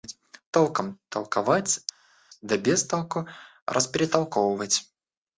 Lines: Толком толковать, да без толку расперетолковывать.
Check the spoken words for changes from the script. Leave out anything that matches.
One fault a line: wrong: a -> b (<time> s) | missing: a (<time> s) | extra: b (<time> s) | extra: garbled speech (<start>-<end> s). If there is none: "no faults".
no faults